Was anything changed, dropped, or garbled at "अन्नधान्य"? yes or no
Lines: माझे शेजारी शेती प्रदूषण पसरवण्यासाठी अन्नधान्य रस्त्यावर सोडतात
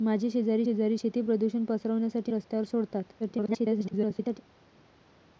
yes